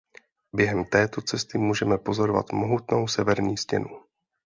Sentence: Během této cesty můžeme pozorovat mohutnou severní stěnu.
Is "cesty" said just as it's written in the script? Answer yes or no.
yes